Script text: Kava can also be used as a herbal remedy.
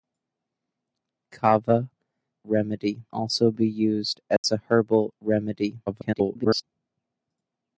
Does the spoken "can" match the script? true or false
false